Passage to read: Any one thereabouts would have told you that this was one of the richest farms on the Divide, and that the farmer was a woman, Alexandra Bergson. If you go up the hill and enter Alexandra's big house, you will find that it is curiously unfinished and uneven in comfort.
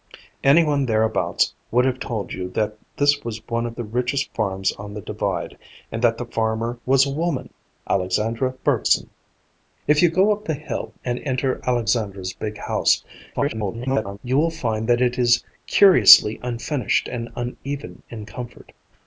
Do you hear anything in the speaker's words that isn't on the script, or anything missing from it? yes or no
yes